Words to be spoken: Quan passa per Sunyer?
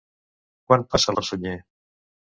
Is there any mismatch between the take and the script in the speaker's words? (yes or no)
no